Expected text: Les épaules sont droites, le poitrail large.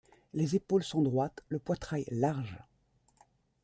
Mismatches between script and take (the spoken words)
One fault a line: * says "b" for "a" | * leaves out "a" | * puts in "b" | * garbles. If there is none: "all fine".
all fine